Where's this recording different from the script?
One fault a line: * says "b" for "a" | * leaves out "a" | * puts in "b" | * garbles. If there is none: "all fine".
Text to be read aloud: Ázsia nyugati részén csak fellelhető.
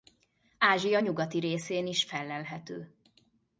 * says "is" for "csak"